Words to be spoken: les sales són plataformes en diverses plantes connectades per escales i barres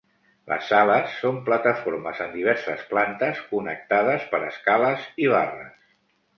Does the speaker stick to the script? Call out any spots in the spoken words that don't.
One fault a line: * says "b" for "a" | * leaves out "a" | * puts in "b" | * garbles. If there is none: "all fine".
all fine